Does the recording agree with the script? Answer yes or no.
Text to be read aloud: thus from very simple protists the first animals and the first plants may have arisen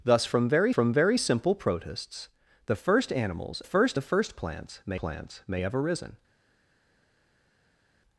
no